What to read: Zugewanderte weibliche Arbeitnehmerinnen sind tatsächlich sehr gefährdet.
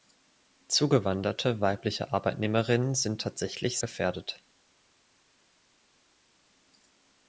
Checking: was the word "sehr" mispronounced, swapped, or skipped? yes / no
yes